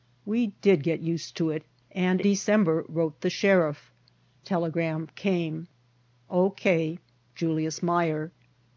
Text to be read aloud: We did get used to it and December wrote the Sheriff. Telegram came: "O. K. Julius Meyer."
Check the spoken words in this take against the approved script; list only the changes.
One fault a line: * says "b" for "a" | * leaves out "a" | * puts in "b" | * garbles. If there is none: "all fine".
all fine